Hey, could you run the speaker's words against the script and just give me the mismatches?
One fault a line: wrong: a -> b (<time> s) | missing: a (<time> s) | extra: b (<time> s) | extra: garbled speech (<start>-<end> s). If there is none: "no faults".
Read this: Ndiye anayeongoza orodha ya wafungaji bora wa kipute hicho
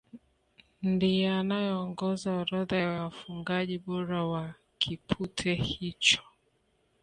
no faults